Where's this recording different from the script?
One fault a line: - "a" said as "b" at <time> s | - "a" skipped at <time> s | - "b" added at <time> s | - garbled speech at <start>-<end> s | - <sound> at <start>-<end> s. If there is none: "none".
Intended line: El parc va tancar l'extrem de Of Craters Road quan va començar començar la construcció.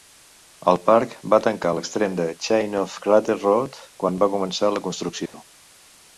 - "Chain" added at 2.5 s
- "començar" skipped at 4.7 s
- dropout at 5.3-5.3 s